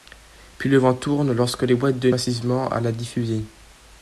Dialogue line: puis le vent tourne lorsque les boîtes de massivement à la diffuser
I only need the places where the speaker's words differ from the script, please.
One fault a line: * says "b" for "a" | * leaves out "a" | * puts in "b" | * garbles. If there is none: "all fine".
all fine